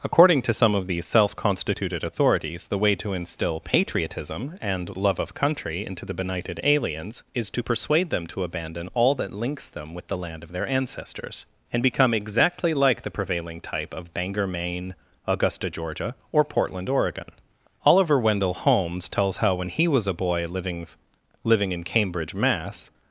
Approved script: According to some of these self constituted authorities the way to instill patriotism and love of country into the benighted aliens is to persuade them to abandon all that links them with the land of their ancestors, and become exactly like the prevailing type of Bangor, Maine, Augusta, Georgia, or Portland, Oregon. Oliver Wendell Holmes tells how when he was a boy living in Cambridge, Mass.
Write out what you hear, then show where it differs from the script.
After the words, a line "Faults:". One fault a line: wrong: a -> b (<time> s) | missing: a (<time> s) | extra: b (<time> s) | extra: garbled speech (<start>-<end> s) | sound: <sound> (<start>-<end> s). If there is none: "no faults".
According to some of these self constituted authorities the way to instill patriotism and love of country into the benighted aliens is to persuade them to abandon all that links them with the land of their ancestors, and become exactly like the prevailing type of Bangor, Maine, Augusta, Georgia, or Portland, Oregon. Oliver Wendell Holmes tells how when he was a boy living living in Cambridge, Mass.
Faults:
extra: living (21.4 s)